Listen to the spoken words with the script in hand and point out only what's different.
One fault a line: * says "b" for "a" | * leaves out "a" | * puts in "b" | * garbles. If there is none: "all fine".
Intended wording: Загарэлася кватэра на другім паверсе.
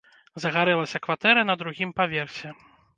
all fine